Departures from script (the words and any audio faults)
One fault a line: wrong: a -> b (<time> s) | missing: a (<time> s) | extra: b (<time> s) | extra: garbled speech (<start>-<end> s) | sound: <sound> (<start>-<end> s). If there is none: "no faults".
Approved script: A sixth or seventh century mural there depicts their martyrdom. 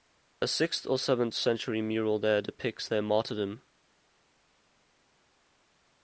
no faults